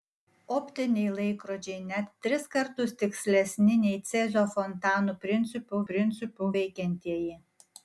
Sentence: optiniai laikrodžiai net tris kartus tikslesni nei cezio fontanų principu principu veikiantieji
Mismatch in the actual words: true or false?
false